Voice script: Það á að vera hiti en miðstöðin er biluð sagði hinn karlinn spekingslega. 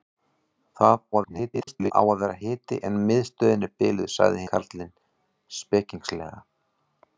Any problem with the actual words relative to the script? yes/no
yes